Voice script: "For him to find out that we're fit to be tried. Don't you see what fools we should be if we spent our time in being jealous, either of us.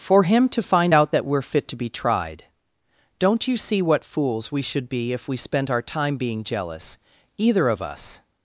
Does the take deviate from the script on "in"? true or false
true